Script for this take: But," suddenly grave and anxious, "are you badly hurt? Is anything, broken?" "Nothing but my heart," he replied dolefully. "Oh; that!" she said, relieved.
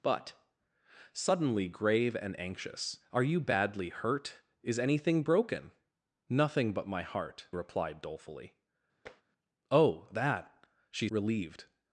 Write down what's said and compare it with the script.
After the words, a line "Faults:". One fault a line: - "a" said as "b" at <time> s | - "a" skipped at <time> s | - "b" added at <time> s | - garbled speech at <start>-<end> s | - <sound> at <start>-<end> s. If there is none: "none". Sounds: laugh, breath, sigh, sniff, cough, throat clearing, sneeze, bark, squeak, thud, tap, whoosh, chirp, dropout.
But," suddenly grave and anxious, "are you badly hurt? Is anything, broken?" "Nothing but my heart," replied dolefully. "Oh; that!" she relieved.
Faults:
- "he" skipped at 7.5 s
- tap at 9.1-9.2 s
- "said" skipped at 11.1 s